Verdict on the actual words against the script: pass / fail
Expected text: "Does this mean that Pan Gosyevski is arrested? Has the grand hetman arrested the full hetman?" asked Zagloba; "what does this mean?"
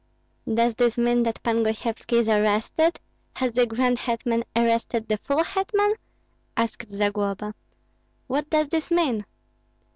pass